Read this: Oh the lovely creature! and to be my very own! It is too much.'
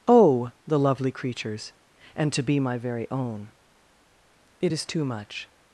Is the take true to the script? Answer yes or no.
no